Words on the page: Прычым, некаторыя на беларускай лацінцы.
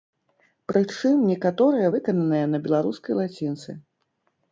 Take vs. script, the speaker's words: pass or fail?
fail